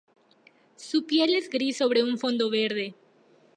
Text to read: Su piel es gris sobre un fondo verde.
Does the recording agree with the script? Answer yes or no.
yes